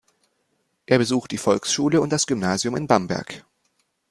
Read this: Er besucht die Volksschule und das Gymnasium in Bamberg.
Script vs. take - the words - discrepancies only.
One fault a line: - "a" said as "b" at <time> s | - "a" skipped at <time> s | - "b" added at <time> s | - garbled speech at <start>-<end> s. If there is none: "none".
none